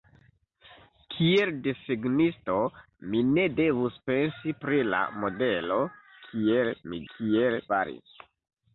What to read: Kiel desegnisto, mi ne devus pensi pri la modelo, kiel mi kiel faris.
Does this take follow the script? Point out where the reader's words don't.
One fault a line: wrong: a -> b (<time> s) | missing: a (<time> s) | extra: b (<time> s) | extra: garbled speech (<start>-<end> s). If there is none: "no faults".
no faults